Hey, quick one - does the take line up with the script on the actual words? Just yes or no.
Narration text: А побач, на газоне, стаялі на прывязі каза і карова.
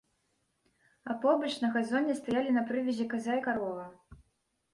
yes